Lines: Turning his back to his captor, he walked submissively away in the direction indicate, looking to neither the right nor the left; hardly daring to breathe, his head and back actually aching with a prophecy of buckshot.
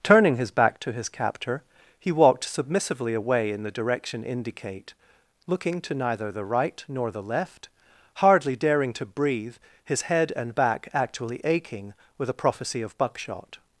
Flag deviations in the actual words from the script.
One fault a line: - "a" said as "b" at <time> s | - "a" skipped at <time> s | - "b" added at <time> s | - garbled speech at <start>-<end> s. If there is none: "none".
none